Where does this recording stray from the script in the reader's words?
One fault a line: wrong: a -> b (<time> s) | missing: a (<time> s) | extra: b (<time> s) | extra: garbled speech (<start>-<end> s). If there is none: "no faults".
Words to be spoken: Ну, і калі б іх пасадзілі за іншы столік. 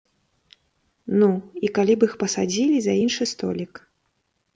no faults